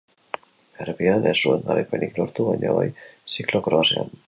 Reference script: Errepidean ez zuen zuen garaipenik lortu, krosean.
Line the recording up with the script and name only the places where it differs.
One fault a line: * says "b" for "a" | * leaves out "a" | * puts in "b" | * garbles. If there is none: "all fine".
* leaves out "zuen"
* puts in "baina bai ziklo"